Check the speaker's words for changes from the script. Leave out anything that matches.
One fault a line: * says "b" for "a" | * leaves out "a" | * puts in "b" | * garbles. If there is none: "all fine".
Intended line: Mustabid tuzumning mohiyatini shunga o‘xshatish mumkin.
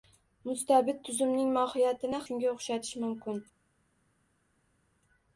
all fine